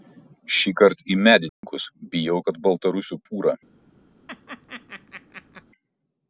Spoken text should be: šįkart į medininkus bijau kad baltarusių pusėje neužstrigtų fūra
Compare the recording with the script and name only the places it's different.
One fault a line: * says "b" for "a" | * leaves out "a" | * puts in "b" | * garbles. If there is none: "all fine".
* leaves out "pusėje neužstrigtų"